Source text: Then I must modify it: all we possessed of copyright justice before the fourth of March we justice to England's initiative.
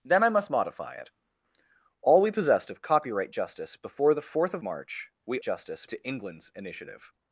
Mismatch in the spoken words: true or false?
false